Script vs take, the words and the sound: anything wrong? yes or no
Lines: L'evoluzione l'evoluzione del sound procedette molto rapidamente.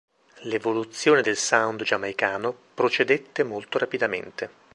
yes